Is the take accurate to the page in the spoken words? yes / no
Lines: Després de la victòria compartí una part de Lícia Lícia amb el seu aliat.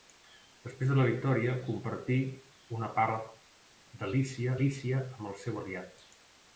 yes